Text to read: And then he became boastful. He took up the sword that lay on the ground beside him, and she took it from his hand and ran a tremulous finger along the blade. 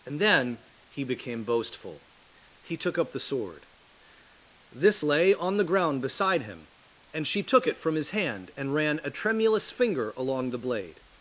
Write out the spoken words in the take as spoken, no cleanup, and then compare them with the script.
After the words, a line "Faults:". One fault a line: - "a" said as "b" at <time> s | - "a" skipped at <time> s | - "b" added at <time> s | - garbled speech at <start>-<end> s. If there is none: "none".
And then he became boastful. He took up the sword this lay on the ground beside him, and she took it from his hand and ran a tremulous finger along the blade.
Faults:
- "that" said as "this" at 4.7 s